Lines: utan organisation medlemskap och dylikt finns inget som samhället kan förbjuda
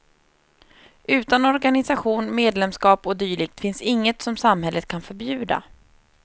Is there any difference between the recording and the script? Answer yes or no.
no